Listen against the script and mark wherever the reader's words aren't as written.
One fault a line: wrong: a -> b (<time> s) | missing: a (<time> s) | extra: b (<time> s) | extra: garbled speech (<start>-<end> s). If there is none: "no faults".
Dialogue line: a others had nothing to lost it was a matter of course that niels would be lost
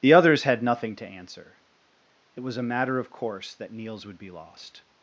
wrong: a -> the (0.0 s)
wrong: lost -> answer (1.1 s)